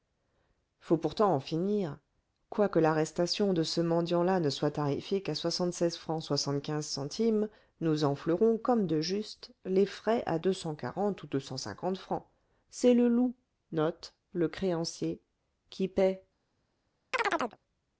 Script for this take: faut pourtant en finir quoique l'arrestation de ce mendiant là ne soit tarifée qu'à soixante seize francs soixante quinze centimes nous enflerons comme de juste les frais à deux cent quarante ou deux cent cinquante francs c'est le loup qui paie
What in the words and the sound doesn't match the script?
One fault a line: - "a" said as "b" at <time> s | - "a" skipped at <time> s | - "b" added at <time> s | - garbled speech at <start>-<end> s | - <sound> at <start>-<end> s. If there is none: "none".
- chirp at 17.1-17.6 s